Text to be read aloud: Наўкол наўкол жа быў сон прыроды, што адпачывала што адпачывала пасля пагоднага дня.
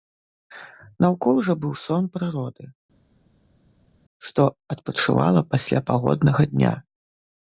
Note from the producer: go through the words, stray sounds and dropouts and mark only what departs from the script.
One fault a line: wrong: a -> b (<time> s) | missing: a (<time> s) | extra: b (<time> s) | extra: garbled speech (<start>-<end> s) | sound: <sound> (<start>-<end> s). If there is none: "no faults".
missing: наўкол (1.4 s)
missing: што адпачывала (5.5 s)